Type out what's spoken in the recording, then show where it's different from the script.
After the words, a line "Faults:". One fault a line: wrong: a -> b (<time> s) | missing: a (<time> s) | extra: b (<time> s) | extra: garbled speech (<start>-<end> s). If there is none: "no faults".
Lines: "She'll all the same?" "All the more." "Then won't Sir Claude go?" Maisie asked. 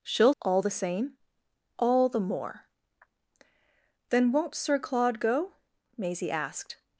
"She'll all the same?" "All the more." "Then won't Sir Claude go?" Maisie asked.
Faults:
no faults